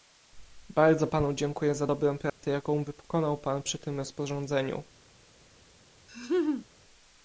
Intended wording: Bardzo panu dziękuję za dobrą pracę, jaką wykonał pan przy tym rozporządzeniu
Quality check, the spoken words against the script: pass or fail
pass